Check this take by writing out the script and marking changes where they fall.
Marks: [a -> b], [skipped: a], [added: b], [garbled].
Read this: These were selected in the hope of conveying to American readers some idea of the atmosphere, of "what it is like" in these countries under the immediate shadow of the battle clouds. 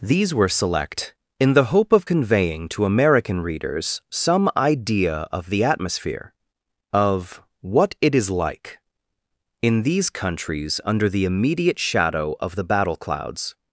These were [selected -> select] in the hope of conveying to American readers some idea of the atmosphere, of "what it is like" in these countries under the immediate shadow of the battle clouds.